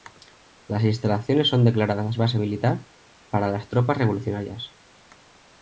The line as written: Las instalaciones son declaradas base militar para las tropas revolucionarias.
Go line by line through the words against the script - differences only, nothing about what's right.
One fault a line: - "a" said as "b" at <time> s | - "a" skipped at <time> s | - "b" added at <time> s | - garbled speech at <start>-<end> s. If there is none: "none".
none